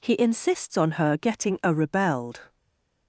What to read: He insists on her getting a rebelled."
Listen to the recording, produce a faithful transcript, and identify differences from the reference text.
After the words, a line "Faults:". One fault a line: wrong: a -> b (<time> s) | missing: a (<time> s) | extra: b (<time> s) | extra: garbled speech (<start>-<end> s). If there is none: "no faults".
He insists on her getting a rebelled."
Faults:
no faults